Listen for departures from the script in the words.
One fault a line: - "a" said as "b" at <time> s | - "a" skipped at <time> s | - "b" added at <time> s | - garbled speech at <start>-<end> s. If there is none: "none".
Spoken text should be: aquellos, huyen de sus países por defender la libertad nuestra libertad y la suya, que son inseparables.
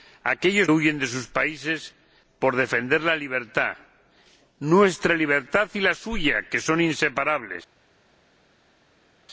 none